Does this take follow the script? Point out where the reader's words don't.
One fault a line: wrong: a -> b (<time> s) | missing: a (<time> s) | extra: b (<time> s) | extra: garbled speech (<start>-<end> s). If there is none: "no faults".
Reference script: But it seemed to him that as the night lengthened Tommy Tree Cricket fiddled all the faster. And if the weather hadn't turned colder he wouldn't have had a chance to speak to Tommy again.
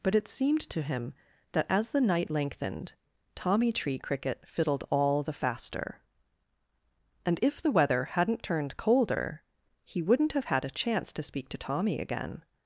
no faults